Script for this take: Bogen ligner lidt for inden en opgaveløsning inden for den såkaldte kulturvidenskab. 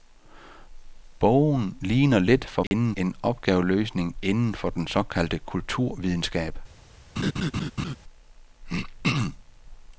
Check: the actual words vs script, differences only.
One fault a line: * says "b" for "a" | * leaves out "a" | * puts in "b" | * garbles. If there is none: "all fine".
all fine